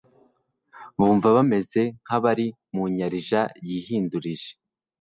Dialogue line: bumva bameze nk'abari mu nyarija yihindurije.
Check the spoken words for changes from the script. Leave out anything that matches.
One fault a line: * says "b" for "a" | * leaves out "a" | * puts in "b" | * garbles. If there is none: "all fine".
all fine